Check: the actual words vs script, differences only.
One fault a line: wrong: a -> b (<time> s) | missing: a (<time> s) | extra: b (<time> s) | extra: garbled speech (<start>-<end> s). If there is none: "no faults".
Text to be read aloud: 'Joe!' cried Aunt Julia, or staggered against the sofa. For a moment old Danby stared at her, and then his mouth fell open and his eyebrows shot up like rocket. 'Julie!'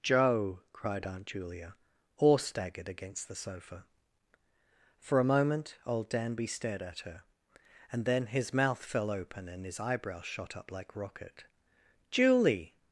no faults